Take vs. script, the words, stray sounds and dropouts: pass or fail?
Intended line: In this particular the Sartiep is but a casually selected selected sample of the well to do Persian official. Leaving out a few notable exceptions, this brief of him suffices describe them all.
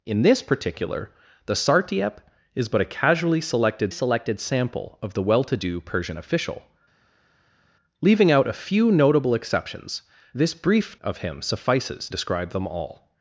pass